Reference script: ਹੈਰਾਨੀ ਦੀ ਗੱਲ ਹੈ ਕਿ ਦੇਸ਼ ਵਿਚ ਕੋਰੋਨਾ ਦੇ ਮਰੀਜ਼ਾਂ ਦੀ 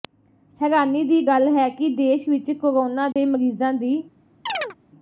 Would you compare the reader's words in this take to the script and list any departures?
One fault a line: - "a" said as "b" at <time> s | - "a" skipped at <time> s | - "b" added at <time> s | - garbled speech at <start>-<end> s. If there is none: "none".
none